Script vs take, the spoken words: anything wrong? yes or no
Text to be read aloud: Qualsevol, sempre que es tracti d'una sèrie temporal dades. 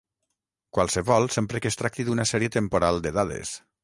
yes